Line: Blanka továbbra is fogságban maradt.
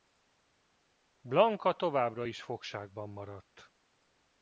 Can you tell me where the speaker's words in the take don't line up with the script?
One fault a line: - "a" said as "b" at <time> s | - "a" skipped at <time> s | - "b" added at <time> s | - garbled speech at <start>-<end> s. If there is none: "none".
none